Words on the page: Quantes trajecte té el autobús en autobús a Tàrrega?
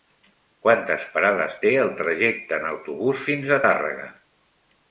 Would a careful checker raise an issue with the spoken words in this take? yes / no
yes